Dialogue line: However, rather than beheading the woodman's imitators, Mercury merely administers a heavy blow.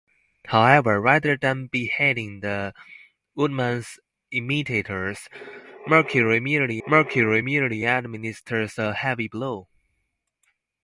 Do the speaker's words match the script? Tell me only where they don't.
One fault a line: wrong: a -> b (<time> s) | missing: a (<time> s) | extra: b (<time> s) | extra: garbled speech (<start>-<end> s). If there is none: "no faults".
extra: Mercury merely (6.9 s)